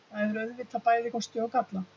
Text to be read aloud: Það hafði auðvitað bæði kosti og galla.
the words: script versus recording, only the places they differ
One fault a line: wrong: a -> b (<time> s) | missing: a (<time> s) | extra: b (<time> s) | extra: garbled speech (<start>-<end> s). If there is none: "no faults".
wrong: hafði -> hefur (0.2 s)